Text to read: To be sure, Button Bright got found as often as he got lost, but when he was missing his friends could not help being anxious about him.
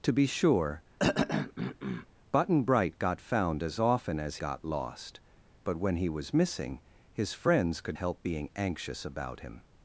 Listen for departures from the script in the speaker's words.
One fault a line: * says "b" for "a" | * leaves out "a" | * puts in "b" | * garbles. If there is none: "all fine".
* leaves out "he"
* leaves out "not"